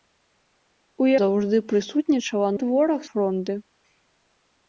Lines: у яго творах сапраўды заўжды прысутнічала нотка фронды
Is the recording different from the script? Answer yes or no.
yes